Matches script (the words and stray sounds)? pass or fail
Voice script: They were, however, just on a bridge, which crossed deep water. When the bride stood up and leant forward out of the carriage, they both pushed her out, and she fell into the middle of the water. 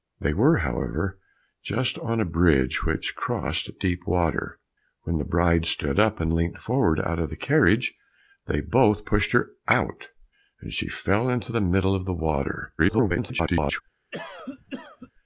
fail